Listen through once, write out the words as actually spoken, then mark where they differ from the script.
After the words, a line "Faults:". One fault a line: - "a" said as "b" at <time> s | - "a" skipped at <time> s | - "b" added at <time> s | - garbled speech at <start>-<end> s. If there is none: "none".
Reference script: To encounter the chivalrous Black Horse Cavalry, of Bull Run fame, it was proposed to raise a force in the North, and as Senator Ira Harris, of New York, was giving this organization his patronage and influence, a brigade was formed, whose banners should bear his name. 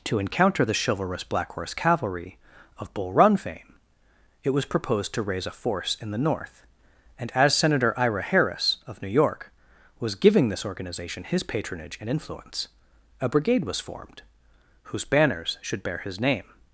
To encounter the chivalrous Black Horse Cavalry, of Bull Run fame, it was proposed to raise a force in the North, and as Senator Ira Harris, of New York, was giving this organization his patronage and influence, a brigade was formed, whose banners should bear his name.
Faults:
none